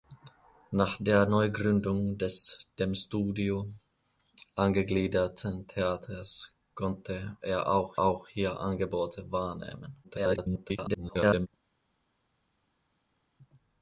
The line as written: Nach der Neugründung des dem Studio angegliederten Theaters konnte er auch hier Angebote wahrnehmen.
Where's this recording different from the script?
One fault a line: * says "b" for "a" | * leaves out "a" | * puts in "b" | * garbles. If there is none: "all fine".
* puts in "auch"
* garbles